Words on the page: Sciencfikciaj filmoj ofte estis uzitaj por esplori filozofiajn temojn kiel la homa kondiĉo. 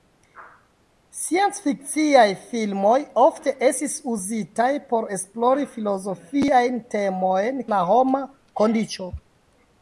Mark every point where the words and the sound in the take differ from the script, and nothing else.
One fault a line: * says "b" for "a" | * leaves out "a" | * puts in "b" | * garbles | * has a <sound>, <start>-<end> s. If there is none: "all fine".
* leaves out "kiel"